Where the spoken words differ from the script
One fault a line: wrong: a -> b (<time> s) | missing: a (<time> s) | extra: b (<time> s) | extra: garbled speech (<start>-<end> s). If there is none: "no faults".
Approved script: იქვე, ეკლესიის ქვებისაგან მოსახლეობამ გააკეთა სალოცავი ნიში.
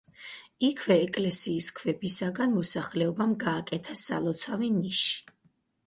no faults